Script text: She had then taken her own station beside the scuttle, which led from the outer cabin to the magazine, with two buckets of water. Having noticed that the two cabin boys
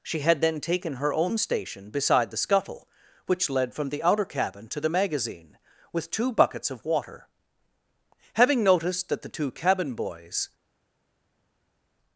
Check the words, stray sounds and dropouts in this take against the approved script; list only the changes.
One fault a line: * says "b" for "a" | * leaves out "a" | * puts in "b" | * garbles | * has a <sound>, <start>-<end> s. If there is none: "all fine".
all fine